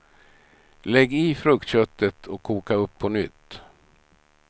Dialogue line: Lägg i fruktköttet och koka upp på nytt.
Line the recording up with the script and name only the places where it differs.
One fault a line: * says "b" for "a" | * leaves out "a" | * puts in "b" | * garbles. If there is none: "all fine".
all fine